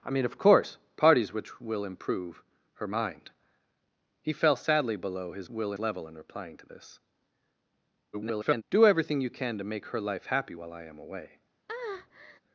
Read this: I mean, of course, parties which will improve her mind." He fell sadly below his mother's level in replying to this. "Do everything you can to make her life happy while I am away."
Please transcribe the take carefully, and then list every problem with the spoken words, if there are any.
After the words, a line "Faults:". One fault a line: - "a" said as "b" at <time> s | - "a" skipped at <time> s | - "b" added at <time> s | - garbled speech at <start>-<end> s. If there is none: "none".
I mean, of course, parties which will improve her mind." He fell sadly below his will level in replying to this. [garbled] "Do everything you can to make her life happy while I am away."
Faults:
- "mother's" said as "will" at 5.5 s
- garbled speech at 8.1-8.6 s